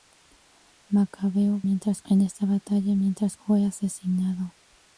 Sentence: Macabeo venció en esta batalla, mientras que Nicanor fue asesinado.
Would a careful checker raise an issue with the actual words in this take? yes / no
yes